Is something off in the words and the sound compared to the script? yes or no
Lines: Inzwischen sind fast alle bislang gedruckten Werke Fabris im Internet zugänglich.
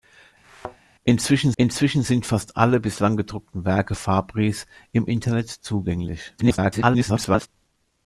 yes